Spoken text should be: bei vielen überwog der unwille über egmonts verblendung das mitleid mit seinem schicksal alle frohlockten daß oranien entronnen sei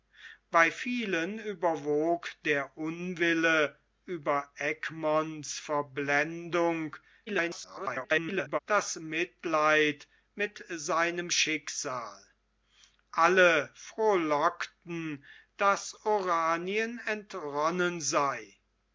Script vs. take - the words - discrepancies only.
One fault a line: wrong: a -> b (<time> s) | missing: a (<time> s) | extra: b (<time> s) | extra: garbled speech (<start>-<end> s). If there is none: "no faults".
extra: garbled speech (7.3-8.6 s)